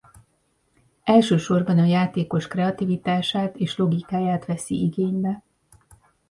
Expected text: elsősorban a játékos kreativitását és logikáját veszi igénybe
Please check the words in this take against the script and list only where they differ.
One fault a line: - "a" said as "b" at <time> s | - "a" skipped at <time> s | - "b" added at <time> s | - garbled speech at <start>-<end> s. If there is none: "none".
none